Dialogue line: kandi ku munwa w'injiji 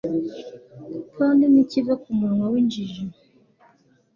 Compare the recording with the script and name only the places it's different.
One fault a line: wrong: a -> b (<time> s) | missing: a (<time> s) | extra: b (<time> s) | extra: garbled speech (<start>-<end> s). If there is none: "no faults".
extra: ntikiva (1.5 s)